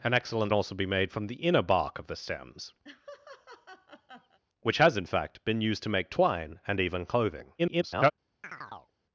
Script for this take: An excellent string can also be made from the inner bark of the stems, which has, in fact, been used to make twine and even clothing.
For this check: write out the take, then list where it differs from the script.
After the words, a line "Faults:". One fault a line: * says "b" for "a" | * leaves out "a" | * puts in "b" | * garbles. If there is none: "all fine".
An excellent also be made from the inner bark of the stems, which has, in fact, been used to make twine and even clothing. [garbled]
Faults:
* leaves out "string can"
* garbles